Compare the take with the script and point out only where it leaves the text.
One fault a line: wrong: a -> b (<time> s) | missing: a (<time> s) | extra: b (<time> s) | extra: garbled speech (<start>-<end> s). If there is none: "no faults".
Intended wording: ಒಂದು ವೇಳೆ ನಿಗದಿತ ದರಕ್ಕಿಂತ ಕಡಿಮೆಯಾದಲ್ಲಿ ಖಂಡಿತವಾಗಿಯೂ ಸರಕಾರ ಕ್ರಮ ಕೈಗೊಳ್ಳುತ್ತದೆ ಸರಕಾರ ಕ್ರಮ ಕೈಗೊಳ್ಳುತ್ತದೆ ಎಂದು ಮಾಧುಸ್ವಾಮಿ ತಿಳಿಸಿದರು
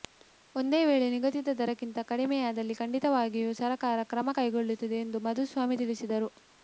missing: ಸರಕಾರ ಕ್ರಮ ಕೈಗೊಳ್ಳುತ್ತದೆ (5.0 s)